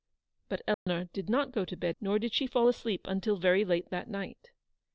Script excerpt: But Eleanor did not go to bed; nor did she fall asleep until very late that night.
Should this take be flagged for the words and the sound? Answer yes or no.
yes